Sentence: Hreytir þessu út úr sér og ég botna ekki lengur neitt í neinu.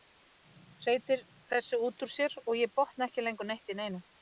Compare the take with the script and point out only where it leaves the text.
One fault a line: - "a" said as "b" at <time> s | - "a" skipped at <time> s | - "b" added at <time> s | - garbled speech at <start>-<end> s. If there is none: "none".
none